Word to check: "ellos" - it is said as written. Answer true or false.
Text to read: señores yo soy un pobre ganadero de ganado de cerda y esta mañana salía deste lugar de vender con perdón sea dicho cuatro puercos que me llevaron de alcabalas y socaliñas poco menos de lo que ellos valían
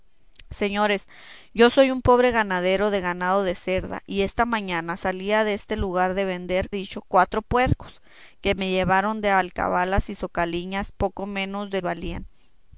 false